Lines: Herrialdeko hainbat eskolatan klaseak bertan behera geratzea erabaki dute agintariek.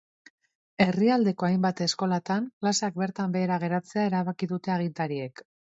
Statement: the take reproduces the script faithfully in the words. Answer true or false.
true